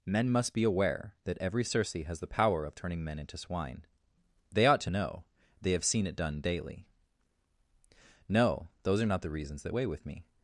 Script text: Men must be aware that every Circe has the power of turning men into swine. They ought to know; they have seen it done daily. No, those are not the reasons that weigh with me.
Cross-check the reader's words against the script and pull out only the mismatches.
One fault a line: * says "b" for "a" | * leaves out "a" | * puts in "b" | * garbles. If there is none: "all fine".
all fine